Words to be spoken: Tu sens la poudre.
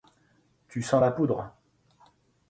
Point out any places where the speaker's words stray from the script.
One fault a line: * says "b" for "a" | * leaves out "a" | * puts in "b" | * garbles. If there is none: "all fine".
all fine